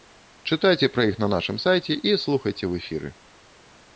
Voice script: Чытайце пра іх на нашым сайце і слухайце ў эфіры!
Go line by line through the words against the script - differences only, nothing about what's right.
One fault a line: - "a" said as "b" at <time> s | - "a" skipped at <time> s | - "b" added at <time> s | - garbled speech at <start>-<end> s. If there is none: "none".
none